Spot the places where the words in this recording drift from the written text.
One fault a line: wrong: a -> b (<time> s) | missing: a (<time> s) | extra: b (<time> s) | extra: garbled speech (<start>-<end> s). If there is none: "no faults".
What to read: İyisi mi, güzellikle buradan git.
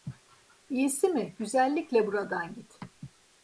no faults